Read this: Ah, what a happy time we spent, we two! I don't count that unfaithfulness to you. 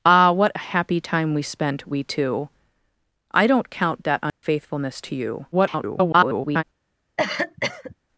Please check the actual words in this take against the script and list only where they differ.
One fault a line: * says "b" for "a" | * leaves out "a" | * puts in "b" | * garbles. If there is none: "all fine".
* garbles